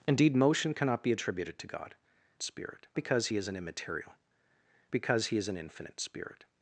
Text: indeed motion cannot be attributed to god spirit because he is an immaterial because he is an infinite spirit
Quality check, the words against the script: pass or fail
pass